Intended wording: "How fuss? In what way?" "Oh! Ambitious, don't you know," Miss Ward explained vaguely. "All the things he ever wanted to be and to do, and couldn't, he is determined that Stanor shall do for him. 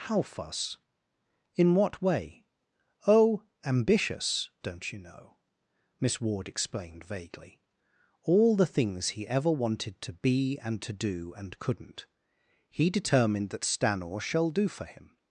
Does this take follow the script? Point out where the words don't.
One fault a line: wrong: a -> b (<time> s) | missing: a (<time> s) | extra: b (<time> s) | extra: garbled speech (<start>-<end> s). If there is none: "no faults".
missing: is (12.9 s)